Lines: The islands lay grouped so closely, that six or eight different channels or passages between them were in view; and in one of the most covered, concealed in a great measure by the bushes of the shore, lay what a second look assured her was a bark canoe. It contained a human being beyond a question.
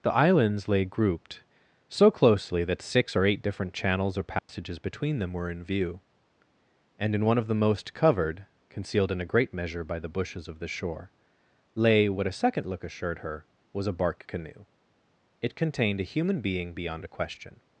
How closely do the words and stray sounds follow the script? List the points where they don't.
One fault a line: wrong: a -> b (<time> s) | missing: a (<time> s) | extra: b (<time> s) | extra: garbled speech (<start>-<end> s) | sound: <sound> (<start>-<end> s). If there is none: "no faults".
sound: dropout (4.4-4.5 s)